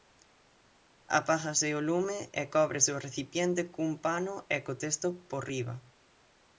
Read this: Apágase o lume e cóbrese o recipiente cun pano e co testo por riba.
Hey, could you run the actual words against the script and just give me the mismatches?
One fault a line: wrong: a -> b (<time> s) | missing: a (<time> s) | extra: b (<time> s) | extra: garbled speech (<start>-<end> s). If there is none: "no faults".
no faults